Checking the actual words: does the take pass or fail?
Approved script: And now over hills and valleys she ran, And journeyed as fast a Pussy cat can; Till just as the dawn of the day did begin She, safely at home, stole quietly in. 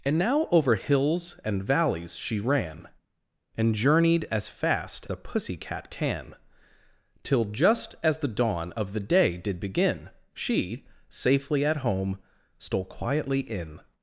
pass